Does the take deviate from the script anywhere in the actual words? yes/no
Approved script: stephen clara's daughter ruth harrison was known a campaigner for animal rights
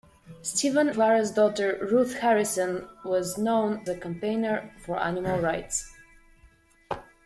no